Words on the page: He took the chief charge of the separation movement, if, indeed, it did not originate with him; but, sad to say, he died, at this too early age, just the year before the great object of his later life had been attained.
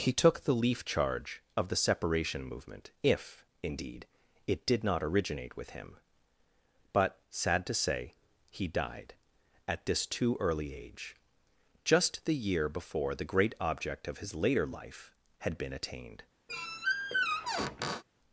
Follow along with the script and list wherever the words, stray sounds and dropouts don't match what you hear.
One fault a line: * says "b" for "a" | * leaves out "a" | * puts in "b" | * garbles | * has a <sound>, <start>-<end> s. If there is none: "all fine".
* says "leaf" for "chief"
* has a squeak, 16.5-18.0 s